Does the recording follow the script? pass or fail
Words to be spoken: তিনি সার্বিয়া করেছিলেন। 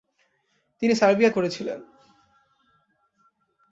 pass